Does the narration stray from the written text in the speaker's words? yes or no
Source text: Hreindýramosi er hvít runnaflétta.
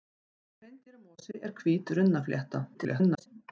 yes